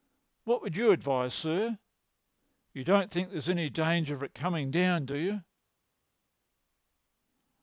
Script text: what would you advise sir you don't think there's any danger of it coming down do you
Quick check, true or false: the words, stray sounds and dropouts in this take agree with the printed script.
true